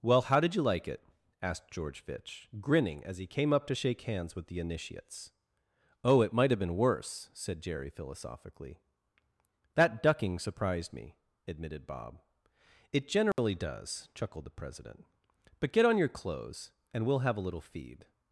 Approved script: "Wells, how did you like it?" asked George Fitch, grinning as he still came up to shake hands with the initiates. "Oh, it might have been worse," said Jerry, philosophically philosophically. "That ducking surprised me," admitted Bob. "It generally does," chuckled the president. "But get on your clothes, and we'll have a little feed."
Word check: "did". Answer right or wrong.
right